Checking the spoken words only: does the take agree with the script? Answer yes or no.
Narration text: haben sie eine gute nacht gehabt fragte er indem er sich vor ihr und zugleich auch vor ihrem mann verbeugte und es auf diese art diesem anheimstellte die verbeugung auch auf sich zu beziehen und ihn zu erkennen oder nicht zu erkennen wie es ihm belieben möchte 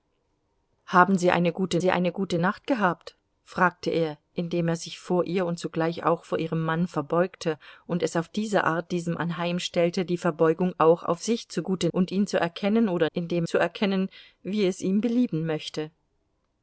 no